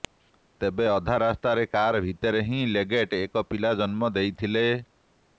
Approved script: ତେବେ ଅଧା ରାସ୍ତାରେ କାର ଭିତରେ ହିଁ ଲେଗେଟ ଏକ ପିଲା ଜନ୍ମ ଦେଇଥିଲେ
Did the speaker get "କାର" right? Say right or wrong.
right